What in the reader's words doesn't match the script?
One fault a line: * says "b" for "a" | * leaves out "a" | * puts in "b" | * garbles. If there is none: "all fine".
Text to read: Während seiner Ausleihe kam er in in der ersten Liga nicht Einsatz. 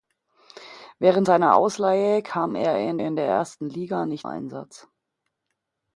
all fine